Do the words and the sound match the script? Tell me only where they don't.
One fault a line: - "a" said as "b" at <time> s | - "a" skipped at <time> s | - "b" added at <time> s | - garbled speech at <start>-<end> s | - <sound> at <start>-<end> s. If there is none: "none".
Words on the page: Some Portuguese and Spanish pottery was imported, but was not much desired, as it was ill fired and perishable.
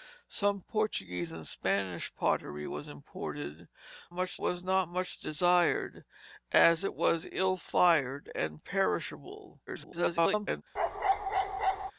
- "but" said as "much" at 4.1 s
- garbled speech at 9.7-10.6 s
- bark at 10.8-11.9 s